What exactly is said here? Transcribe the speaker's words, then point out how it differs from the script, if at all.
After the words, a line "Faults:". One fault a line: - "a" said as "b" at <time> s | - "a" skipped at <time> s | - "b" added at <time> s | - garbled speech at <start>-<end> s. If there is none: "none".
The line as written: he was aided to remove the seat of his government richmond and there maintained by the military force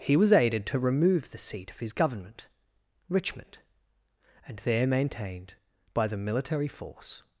he was aided to remove the seat of his government richmond and there maintained by the military force
Faults:
none